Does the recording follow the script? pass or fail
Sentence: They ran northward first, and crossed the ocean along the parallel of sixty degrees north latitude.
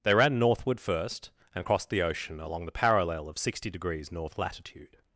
pass